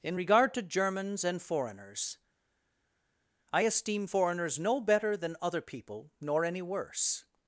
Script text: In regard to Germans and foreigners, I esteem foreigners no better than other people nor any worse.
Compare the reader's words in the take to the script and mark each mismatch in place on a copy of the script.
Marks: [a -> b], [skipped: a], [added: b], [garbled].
In regard to Germans and foreigners, I esteem foreigners no better than other people nor any worse.